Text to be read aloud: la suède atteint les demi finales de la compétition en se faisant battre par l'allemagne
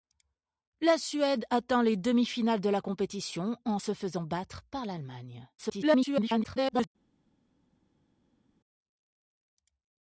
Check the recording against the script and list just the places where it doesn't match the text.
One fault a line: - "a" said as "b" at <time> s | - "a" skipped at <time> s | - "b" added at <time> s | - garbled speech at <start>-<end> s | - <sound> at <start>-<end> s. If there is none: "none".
- garbled speech at 5.6-6.9 s